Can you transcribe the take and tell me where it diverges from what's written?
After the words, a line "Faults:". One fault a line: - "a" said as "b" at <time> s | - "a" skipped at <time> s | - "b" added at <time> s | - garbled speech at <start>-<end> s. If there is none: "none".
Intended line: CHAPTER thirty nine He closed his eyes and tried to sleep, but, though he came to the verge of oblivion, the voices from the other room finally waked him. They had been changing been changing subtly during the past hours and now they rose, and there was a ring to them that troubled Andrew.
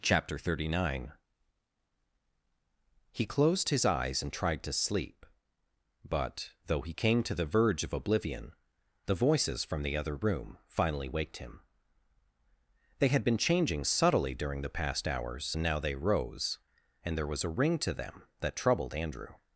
CHAPTER thirty nine He closed his eyes and tried to sleep, but, though he came to the verge of oblivion, the voices from the other room finally waked him. They had been changing subtly during the past hours and now they rose, and there was a ring to them that troubled Andrew.
Faults:
- "been changing" skipped at 13.8 s